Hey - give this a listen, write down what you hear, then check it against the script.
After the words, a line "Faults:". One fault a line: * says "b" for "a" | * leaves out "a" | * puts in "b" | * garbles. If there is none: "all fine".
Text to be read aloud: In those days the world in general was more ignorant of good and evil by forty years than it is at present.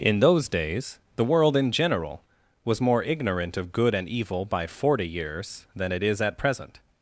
In those days the world in general was more ignorant of good and evil by forty years than it is at present.
Faults:
all fine